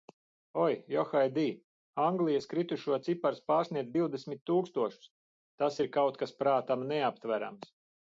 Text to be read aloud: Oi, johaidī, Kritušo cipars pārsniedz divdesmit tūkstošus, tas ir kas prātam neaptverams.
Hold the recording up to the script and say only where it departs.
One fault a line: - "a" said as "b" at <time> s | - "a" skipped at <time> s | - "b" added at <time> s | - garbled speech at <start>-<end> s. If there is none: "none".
- "Anglijas" added at 2.0 s
- "kaut" added at 6.0 s